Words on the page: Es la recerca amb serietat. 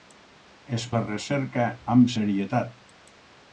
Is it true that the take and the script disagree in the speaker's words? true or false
false